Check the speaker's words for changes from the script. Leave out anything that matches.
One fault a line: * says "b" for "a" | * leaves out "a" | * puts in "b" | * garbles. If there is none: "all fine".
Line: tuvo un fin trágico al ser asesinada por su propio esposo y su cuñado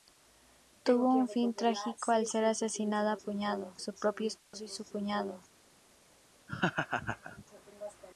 * says "cuñado" for "por"